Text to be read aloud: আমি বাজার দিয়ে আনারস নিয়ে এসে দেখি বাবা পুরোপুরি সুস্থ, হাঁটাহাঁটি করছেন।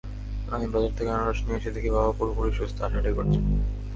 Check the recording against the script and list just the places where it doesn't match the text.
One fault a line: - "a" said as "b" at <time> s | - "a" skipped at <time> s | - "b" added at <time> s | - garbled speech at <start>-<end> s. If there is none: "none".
- "দিয়ে" said as "থেকে" at 1.0 s